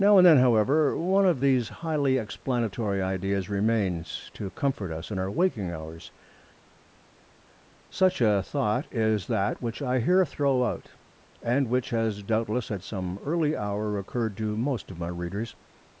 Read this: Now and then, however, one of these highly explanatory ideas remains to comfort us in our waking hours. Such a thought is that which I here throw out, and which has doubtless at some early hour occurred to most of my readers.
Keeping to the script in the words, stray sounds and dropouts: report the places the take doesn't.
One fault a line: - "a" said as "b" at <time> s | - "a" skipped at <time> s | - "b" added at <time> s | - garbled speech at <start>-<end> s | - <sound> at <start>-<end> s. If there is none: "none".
none